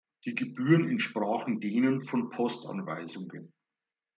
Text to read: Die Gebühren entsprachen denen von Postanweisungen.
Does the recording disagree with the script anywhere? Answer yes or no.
no